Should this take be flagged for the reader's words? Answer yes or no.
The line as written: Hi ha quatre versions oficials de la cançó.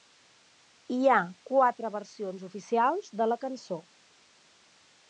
no